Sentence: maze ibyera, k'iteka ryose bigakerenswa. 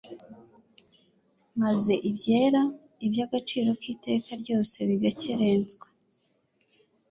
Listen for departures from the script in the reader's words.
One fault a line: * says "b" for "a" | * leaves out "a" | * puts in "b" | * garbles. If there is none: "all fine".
* puts in "iby'agaciro"